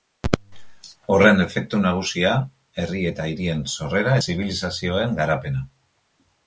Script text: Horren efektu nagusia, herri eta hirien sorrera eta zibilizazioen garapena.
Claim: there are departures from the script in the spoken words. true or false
true